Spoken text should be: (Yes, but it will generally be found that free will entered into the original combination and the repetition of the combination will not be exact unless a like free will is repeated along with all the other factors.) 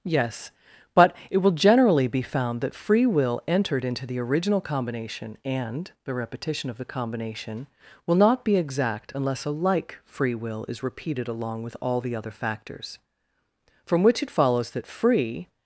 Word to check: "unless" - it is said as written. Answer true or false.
true